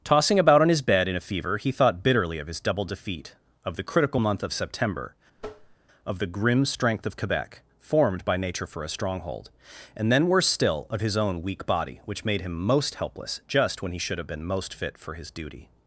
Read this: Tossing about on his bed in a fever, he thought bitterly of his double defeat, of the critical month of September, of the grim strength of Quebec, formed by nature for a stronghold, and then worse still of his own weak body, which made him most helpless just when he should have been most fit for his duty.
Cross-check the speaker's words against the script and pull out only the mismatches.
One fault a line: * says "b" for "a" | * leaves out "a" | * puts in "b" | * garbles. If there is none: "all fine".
all fine